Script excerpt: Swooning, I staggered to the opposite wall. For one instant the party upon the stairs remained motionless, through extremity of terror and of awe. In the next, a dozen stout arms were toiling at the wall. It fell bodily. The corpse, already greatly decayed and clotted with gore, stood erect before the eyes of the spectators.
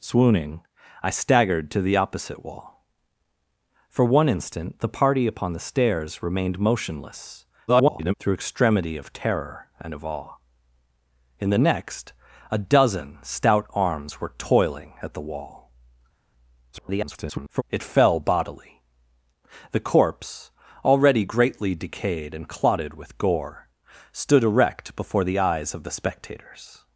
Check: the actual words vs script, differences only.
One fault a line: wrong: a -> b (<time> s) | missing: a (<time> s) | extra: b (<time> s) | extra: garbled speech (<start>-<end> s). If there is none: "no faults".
extra: garbled speech (7.7-8.1 s)
extra: garbled speech (16.7-17.6 s)